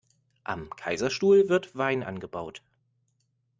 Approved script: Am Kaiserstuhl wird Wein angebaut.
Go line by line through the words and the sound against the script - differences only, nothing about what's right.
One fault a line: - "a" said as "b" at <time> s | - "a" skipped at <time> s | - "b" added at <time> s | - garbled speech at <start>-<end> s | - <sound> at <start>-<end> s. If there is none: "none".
none